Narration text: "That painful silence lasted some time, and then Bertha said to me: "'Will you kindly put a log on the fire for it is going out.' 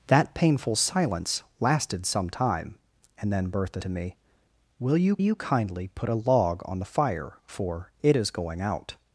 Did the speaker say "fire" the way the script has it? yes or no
yes